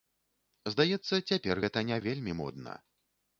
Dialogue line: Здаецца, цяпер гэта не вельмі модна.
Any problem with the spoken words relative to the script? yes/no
no